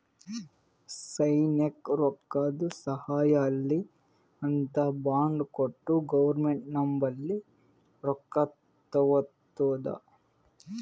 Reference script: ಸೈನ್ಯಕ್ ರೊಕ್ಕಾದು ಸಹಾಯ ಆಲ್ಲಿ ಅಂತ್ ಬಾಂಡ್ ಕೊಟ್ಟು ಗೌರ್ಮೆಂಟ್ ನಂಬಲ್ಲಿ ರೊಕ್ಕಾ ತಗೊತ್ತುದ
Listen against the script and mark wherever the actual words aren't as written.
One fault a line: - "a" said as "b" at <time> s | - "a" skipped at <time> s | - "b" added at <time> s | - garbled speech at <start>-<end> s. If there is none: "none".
none